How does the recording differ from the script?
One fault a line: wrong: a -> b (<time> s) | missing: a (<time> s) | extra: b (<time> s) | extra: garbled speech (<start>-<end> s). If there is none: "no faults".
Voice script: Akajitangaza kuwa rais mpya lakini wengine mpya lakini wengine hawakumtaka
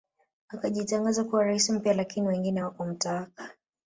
missing: mpya lakini wengine (2.6 s)